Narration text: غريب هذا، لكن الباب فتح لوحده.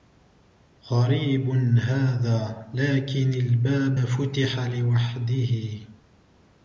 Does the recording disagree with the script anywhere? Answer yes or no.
no